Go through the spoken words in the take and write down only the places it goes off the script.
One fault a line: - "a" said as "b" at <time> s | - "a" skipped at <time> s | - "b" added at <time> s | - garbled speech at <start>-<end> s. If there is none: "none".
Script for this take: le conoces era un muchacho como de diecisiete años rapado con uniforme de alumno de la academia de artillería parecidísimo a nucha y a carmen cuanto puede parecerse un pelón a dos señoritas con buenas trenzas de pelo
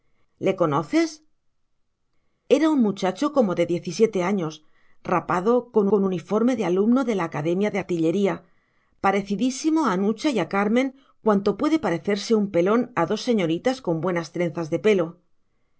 - "con" added at 5.9 s